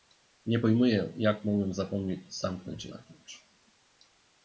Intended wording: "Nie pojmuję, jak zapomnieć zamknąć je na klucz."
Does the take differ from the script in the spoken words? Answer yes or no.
yes